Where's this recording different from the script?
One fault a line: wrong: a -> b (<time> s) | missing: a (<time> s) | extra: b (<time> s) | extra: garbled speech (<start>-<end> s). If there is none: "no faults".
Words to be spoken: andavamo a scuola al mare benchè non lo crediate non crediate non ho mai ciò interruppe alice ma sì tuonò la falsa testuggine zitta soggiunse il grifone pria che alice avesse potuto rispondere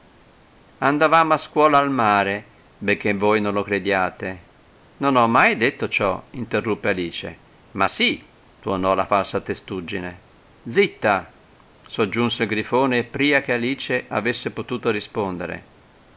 extra: voi (3.1 s)
missing: crediate non (5.2 s)
extra: detto (5.6 s)